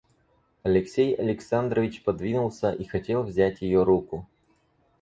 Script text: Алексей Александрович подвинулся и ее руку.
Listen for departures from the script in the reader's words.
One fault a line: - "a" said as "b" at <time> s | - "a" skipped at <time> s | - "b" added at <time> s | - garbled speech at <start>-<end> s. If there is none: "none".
- "хотел взять" added at 2.9 s